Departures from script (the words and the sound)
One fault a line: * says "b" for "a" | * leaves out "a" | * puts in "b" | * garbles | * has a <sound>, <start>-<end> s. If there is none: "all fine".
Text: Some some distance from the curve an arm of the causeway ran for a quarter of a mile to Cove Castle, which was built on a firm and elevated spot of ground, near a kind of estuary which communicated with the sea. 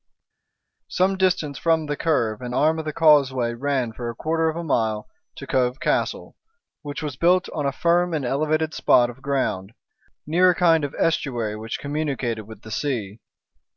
* leaves out "some"